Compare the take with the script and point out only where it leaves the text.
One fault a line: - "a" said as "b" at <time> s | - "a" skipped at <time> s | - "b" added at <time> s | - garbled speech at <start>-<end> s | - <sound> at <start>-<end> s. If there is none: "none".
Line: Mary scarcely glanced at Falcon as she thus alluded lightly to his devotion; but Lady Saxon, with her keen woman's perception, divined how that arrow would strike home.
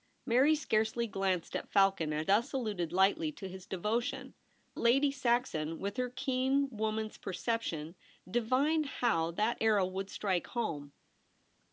- "she" skipped at 2.2 s
- "but" skipped at 4.3 s